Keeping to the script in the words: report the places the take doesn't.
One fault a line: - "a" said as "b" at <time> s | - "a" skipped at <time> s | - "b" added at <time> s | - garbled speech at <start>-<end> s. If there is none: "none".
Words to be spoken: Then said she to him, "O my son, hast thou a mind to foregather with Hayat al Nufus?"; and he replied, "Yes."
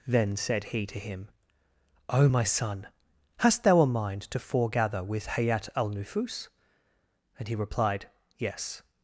- "she" said as "he" at 0.7 s